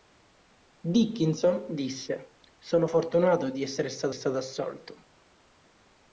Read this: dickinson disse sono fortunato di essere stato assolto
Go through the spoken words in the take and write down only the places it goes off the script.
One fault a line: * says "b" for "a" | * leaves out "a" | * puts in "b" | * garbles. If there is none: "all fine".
* puts in "stato"